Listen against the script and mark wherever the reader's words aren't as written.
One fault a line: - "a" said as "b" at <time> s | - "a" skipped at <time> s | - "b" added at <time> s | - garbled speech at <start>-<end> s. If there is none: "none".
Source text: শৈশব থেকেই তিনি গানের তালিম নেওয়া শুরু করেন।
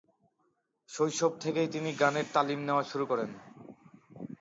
none